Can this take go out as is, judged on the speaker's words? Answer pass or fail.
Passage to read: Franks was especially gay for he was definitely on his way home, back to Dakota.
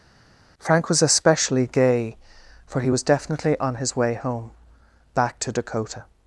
fail